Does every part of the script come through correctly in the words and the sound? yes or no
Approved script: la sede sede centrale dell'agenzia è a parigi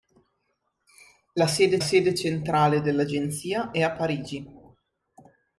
yes